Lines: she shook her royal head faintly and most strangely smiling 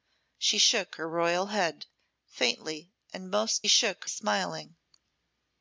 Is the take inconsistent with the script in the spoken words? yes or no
yes